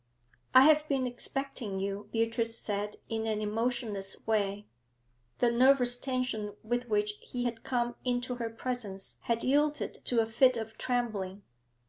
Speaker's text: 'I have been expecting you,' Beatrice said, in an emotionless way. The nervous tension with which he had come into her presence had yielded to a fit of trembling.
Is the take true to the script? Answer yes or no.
yes